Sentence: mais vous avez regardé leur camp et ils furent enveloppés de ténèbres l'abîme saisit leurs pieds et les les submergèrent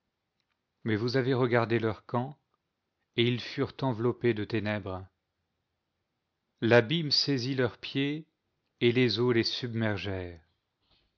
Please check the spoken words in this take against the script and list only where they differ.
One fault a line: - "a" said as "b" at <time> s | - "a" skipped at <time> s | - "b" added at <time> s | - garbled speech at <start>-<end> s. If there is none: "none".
- "eaux" added at 9.2 s